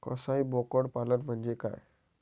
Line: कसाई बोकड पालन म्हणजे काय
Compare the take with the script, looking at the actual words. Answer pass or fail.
pass